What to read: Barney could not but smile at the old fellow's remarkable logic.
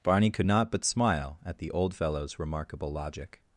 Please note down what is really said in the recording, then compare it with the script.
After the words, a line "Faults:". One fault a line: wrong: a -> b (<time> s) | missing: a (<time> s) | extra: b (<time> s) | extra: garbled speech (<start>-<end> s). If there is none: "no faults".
Barney could not but smile at the old fellow's remarkable logic.
Faults:
no faults